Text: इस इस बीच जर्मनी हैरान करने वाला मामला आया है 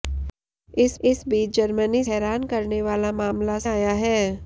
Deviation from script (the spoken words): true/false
false